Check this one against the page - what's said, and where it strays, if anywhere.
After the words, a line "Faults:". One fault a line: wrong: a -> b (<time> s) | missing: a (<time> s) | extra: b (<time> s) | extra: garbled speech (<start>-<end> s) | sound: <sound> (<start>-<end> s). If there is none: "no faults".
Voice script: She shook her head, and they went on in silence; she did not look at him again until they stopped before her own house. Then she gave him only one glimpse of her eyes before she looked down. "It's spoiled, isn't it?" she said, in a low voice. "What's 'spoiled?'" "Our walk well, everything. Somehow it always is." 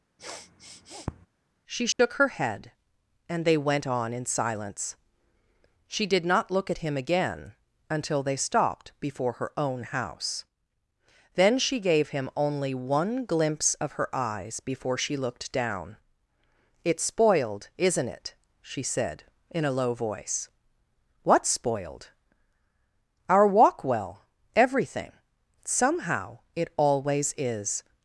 She shook her head, and they went on in silence; she did not look at him again until they stopped before her own house. Then she gave him only one glimpse of her eyes before she looked down. "It's spoiled, isn't it?" she said, in a low voice. "What's 'spoiled?'" "Our walk well, everything. Somehow it always is."
Faults:
sound: sniff (0.2-1.3 s)
sound: dropout (1.9-2.0 s)